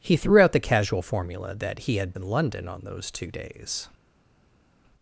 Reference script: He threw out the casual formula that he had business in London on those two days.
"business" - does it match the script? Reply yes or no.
no